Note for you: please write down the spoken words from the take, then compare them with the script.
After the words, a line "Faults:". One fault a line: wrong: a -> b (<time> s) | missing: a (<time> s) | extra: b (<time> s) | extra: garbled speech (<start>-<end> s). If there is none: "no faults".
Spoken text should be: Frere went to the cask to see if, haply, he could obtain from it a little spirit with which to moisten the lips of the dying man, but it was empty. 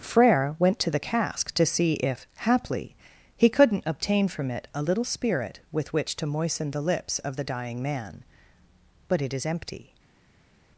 Frere went to the cask to see if, haply, he couldn't obtain from it a little spirit with which to moisten the lips of the dying man, but it is empty.
Faults:
wrong: could -> couldn't (3.5 s)
wrong: was -> is (9.3 s)